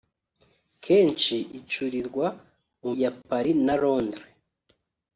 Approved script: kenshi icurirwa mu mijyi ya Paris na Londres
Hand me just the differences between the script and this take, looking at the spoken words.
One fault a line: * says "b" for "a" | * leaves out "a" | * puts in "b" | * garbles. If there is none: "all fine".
* leaves out "mijyi"